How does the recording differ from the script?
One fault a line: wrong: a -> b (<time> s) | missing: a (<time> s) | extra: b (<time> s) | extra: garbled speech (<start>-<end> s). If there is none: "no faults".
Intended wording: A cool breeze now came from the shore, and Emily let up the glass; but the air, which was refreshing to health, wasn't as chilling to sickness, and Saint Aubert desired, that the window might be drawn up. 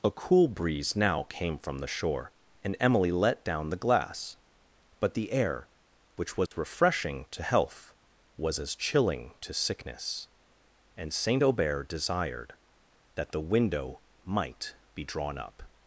wrong: up -> down (3.4 s)
wrong: wasn't -> was (8.4 s)